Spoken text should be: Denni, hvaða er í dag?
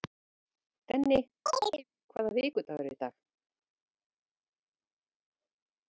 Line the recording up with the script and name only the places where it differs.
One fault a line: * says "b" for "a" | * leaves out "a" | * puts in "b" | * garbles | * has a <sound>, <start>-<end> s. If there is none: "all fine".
* has a chirp, 1.5-1.8 s
* puts in "vikudagur"